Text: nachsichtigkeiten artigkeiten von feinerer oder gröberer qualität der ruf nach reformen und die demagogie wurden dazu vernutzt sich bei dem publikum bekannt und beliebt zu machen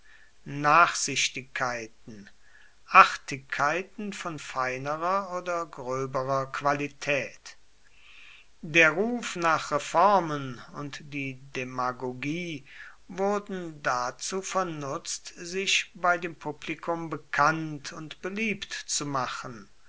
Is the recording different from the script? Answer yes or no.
no